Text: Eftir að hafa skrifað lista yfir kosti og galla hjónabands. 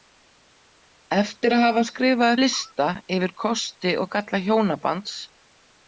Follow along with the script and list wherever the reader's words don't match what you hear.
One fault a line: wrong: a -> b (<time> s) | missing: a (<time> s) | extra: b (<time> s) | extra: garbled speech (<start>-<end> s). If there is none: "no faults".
no faults